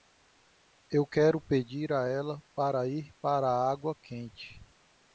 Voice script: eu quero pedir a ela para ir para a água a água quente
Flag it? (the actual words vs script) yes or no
yes